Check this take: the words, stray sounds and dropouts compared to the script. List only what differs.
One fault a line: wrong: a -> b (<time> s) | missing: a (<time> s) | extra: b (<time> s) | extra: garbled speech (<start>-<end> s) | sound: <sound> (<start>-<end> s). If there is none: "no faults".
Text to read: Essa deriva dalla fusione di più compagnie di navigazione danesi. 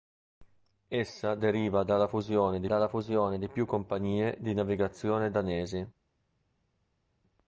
extra: dalla fusione di (2.6 s)